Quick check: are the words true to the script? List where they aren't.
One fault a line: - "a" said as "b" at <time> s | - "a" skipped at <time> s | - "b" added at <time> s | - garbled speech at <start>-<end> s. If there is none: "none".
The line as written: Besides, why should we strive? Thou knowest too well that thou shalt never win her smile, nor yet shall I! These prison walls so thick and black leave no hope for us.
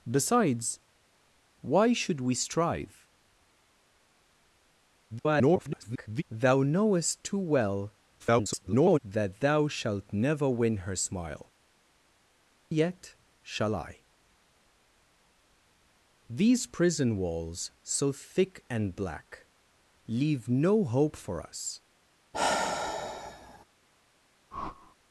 - garbled speech at 5.1-6.2 s
- garbled speech at 8.2-9.0 s
- "nor" skipped at 11.5 s